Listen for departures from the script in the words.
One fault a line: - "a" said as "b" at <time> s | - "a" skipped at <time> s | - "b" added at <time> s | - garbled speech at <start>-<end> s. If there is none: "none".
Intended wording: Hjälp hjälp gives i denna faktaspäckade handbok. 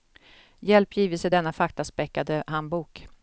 - "hjälp" skipped at 0.9 s